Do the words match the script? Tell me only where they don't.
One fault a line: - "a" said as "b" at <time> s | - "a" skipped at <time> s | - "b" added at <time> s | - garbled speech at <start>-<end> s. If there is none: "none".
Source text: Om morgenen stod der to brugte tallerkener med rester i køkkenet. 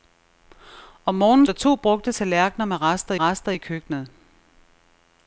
- "stod" skipped at 1.5 s
- "rester" added at 3.2 s